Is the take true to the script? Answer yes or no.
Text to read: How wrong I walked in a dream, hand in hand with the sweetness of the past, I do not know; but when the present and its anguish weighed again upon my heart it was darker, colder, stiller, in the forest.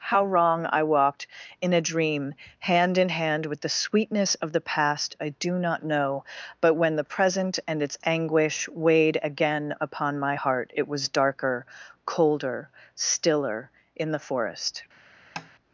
yes